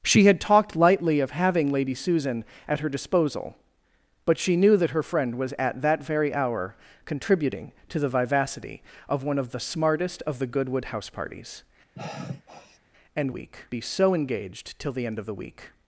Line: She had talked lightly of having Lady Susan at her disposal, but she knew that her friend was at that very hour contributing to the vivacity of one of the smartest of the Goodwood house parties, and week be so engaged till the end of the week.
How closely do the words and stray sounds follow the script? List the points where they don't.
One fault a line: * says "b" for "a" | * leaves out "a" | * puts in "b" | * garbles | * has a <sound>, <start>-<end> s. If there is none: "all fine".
* has a sigh, 11.9-12.8 s